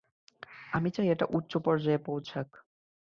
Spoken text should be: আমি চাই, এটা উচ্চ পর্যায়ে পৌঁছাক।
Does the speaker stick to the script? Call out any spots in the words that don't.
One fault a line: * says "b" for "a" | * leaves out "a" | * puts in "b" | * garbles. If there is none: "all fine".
all fine